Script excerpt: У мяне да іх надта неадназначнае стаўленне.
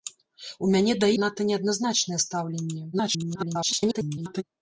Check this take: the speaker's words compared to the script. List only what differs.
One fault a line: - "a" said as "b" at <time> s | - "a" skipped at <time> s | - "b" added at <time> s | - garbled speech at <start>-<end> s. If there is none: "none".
- "іх" skipped at 1.1 s
- garbled speech at 2.9-4.4 s